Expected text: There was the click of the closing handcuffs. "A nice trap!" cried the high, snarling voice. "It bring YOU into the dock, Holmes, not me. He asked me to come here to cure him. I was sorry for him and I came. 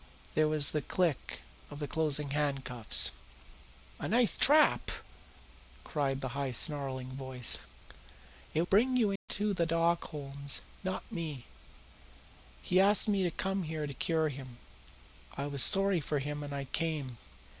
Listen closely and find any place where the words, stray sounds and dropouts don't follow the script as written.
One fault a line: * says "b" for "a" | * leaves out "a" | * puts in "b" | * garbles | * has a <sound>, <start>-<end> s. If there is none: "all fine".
* has a dropout, 9.2-9.3 s